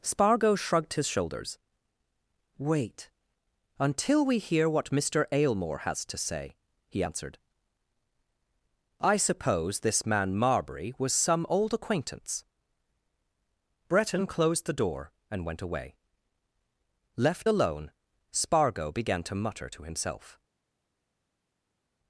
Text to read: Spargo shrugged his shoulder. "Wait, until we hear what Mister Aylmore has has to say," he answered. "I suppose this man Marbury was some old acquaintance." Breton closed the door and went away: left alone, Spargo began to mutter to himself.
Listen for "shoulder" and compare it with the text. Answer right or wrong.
wrong